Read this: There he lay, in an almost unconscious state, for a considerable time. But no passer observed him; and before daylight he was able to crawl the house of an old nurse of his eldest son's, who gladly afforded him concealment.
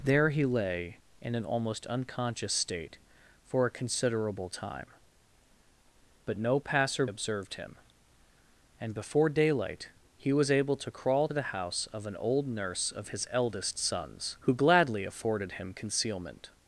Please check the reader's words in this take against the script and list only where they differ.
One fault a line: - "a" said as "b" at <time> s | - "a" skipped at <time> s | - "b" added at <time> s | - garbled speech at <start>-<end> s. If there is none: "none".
none